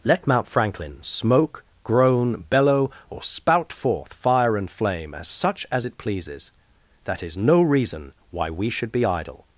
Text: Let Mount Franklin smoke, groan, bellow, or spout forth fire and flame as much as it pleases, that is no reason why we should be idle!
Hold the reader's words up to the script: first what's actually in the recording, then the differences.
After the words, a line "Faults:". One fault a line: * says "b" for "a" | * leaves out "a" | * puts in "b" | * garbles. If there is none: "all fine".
Let Mount Franklin smoke, groan, bellow, or spout forth fire and flame as such as it pleases, that is no reason why we should be idle!
Faults:
* says "such" for "much"